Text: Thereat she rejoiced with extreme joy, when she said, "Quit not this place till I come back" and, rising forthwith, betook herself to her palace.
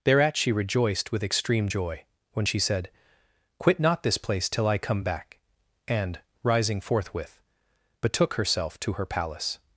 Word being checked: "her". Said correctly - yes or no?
yes